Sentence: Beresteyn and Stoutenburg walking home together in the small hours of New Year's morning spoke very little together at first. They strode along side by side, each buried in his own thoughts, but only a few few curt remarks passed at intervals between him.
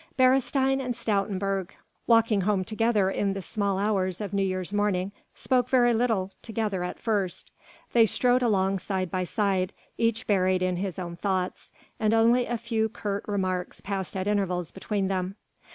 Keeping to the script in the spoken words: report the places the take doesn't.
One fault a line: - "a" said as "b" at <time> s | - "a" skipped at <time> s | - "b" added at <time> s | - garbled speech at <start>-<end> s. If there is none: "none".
- "but" said as "and" at 12.0 s
- "few" skipped at 12.9 s
- "him" said as "them" at 15.1 s